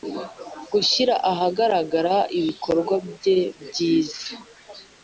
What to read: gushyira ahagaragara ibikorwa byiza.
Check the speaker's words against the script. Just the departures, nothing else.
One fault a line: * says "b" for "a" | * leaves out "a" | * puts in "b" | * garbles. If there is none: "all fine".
* puts in "bye"